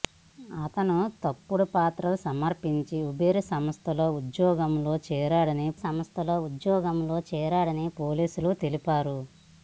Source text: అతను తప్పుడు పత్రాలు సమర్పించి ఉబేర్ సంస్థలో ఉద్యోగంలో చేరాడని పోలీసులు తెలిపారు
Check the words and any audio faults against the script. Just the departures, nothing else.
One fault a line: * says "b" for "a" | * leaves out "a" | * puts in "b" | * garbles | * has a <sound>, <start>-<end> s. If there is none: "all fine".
* puts in "సంస్థలో ఉద్యోగంలో చేరాడని"